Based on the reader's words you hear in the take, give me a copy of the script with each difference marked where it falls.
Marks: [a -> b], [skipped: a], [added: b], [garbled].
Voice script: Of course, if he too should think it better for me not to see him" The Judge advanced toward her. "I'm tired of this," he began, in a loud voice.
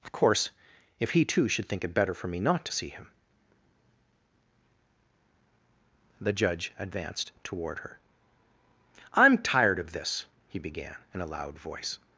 Of course, if he too should think it better for me not to see him" The Judge advanced toward her. "I'm tired of this," he began, in a loud voice.